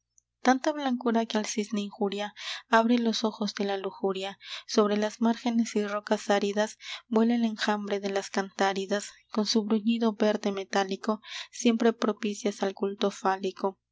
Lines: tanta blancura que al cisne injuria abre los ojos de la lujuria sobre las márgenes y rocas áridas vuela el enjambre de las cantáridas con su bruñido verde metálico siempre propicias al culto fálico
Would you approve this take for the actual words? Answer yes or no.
yes